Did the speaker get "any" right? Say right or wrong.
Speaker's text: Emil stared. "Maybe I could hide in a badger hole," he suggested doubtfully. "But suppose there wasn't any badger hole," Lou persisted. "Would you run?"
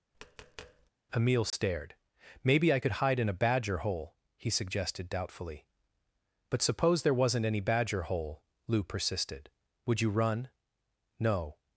right